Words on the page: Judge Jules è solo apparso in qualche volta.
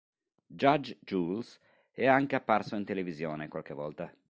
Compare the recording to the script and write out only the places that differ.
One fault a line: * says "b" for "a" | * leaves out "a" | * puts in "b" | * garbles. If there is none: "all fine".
* says "anche" for "solo"
* puts in "televisione"